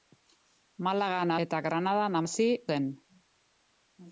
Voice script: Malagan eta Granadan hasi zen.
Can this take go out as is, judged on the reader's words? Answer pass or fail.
pass